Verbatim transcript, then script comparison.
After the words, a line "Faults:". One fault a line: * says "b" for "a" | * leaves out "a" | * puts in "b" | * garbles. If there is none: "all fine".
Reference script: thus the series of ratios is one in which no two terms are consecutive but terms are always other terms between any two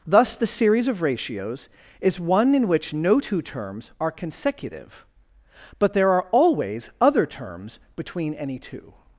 thus the series of ratios is one in which no two terms are consecutive but there are always other terms between any two
Faults:
* says "there" for "terms"